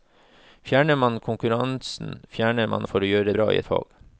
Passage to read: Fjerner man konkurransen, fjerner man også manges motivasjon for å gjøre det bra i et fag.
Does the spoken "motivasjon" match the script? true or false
false